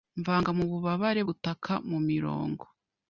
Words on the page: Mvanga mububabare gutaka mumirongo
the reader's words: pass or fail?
pass